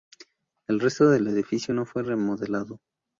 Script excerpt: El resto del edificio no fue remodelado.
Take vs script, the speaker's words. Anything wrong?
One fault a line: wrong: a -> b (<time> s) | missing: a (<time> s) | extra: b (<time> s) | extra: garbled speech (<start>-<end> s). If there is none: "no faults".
no faults